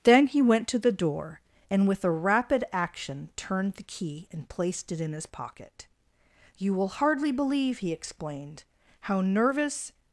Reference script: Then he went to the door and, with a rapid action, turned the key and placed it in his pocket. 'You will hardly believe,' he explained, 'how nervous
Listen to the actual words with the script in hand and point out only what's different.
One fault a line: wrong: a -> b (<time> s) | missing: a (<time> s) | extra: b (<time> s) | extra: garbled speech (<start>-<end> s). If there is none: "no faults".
no faults